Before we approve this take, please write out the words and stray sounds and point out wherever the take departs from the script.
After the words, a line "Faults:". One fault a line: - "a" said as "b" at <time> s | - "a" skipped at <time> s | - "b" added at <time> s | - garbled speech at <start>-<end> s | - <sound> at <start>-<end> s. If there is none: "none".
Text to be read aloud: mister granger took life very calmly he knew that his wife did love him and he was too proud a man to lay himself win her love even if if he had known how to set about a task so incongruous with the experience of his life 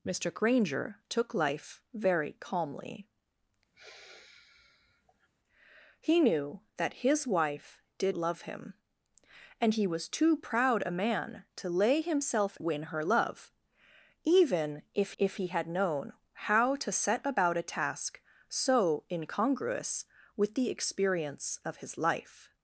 mister granger took life very calmly he knew that his wife did love him and he was too proud a man to lay himself win her love even if if he had known how to set about a task so incongruous with the experience of his life
Faults:
- sigh at 3.7-5.3 s